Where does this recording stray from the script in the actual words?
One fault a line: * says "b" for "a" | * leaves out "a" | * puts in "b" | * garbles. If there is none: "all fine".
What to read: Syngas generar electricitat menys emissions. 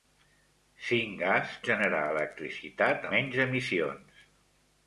all fine